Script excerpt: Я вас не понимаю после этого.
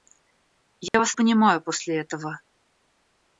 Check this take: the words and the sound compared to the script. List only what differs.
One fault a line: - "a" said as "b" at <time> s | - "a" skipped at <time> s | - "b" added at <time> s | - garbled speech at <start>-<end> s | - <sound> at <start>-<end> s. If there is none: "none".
- dropout at 0.9-0.9 s
- "не" skipped at 1.2 s